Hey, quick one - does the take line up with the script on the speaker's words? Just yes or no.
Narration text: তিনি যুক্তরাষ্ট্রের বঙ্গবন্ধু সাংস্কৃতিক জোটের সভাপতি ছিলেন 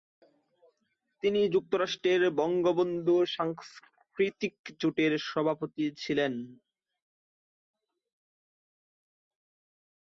yes